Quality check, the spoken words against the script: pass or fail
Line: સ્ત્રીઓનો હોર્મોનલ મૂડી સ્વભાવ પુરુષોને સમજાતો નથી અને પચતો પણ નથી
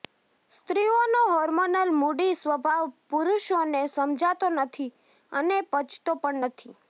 pass